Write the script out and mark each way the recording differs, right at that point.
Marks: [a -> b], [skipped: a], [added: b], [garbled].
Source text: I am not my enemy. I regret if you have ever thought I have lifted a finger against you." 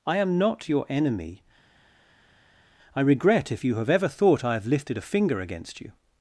I am not [my -> your] enemy. I regret if you have ever thought I have lifted a finger against you."